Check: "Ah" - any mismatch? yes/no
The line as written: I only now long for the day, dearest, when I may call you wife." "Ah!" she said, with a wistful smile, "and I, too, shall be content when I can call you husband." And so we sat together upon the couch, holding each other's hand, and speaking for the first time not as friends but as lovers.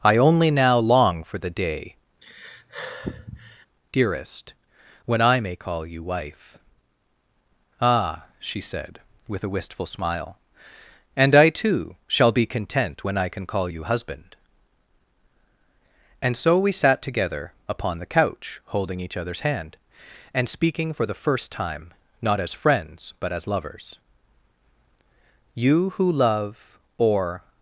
no